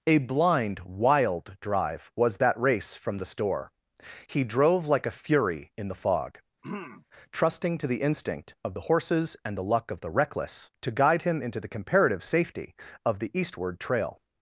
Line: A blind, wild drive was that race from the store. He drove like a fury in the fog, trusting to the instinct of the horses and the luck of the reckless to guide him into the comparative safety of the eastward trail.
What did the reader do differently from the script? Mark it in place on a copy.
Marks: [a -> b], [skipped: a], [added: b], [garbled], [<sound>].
A blind, wild drive was that race from the store. He drove like a fury in the fog, [throat clearing] trusting to the instinct of the horses and the luck of the reckless to guide him into the comparative safety of the eastward trail.